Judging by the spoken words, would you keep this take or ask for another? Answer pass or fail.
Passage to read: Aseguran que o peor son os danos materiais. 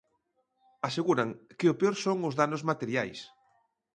pass